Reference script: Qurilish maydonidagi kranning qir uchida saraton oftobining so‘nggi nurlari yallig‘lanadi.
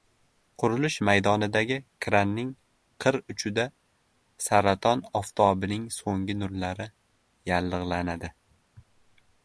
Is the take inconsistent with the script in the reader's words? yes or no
no